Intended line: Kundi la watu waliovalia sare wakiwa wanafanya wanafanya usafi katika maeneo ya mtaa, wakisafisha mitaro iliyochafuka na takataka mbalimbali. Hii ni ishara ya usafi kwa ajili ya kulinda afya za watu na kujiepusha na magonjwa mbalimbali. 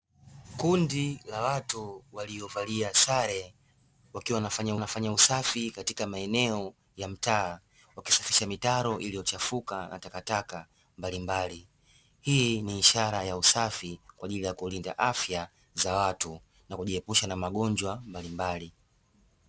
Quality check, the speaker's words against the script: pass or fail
pass